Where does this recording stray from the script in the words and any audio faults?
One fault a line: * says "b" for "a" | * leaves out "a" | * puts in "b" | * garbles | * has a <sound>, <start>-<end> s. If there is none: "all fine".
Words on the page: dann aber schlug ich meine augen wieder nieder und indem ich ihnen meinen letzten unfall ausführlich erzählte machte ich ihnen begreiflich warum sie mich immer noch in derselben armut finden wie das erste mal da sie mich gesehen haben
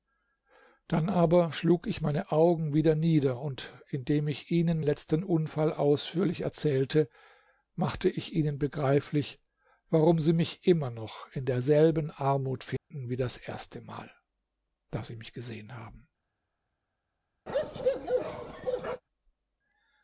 * leaves out "meinen"
* has a dropout, 12.8-12.9 s
* has a bark, 17.5-19.0 s